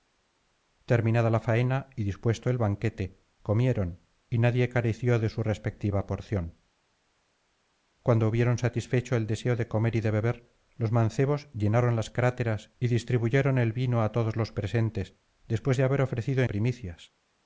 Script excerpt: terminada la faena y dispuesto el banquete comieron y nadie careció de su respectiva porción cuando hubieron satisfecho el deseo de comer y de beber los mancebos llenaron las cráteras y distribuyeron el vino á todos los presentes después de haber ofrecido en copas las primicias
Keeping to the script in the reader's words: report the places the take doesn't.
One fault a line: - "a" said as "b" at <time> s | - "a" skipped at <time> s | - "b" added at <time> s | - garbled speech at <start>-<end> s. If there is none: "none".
- "en copas las" skipped at 16.4 s